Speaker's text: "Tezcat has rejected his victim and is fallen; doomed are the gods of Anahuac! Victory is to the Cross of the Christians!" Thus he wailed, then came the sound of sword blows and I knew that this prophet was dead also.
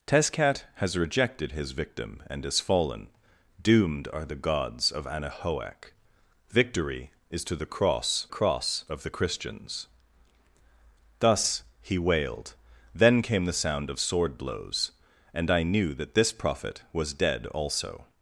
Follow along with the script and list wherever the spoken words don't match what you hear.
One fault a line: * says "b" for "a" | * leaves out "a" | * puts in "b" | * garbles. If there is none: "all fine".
* puts in "Cross"